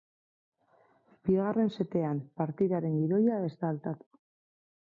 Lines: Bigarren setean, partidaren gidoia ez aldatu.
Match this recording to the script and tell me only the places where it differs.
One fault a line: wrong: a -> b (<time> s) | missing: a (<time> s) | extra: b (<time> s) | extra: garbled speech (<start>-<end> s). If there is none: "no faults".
extra: da (3.6 s)